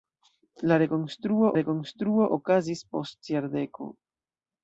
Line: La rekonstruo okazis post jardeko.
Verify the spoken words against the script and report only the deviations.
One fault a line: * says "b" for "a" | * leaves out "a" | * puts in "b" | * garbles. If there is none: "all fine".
* puts in "rekonstruo"